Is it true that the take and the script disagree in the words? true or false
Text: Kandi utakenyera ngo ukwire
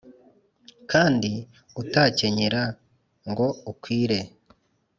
false